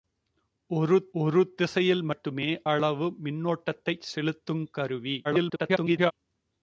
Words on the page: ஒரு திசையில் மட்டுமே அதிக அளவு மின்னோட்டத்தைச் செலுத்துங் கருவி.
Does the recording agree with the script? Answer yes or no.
no